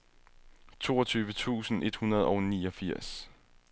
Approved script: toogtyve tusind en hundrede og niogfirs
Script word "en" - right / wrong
wrong